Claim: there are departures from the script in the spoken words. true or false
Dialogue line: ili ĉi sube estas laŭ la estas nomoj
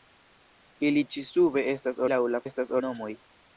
false